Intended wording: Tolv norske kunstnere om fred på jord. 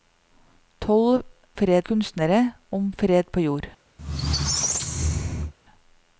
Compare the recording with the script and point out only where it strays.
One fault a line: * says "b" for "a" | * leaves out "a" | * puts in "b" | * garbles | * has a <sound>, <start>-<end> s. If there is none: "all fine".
* says "fred" for "norske"
* has a squeak, 4.0-5.5 s